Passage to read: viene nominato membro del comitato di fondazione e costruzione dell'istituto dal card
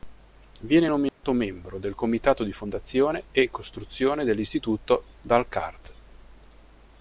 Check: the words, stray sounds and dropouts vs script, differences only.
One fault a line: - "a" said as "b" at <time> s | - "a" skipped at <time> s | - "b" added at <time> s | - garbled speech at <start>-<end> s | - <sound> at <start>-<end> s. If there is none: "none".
- dropout at 1.1-1.2 s